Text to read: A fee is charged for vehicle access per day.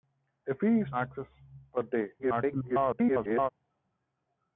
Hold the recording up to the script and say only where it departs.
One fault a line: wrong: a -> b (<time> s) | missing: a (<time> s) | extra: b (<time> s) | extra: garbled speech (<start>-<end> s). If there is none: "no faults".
missing: charged for vehicle (0.9 s)
extra: garbled speech (2.2-3.5 s)